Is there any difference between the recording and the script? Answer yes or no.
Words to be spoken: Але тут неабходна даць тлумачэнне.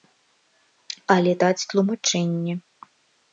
yes